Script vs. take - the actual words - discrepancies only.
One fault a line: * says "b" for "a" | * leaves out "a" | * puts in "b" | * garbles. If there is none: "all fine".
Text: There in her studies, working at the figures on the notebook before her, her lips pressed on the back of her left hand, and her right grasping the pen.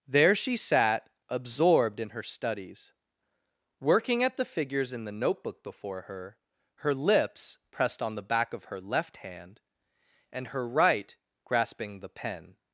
* puts in "she sat absorbed"
* says "in" for "on"